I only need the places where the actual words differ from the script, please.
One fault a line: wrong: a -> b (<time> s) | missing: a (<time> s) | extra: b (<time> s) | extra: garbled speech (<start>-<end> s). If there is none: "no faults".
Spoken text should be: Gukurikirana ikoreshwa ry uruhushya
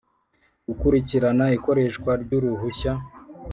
no faults